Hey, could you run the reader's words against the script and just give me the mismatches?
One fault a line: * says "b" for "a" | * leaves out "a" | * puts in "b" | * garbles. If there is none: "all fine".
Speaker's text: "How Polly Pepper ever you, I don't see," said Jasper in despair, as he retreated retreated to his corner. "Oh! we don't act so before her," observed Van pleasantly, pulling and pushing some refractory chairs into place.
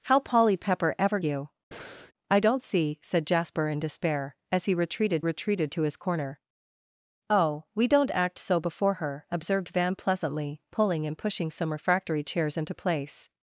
all fine